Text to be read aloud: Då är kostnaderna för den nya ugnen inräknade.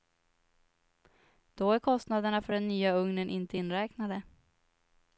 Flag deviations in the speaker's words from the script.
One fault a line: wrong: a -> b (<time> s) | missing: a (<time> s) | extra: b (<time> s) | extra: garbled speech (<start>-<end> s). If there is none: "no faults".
extra: inte (3.3 s)